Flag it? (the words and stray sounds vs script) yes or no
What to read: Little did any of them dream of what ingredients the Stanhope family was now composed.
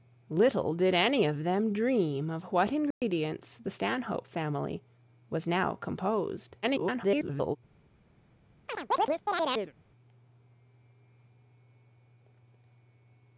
yes